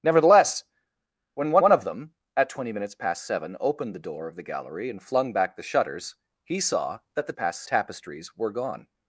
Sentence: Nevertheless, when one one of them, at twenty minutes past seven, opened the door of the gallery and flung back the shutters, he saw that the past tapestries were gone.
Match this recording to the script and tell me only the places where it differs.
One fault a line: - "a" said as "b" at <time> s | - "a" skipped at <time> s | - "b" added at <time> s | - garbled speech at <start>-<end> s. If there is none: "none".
none